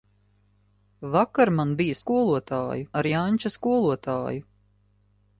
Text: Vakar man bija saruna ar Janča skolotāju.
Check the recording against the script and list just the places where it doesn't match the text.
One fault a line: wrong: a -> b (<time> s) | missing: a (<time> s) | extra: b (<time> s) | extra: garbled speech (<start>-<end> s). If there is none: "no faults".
wrong: saruna -> skolotāju (2.0 s)